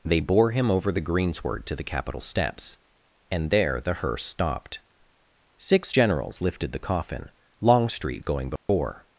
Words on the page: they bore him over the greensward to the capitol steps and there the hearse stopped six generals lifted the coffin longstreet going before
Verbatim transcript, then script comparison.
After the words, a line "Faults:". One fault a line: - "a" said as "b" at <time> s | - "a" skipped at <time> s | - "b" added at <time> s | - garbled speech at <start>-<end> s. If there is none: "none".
they bore him over the greensward to the capitol steps and there the hearse stopped six generals lifted the coffin longstreet going before
Faults:
none